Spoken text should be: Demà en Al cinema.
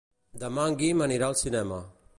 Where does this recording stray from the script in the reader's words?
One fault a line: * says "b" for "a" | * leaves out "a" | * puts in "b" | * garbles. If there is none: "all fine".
* puts in "Guim anirà"